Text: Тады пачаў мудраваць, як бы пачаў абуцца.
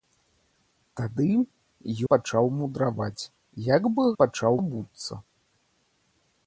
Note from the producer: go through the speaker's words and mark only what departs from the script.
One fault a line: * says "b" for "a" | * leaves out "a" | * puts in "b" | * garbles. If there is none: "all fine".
all fine